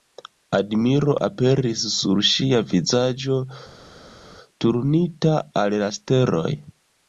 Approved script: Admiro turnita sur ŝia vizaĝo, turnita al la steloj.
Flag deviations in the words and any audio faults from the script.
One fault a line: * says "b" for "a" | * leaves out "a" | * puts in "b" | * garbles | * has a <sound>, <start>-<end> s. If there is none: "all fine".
* says "aperis" for "turnita"